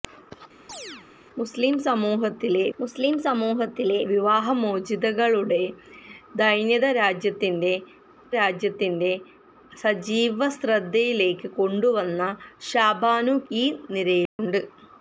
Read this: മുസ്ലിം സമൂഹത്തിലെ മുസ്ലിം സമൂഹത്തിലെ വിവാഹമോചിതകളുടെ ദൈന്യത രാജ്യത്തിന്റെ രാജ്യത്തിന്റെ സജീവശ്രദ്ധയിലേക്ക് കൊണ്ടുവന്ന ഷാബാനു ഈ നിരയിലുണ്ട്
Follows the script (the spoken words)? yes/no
yes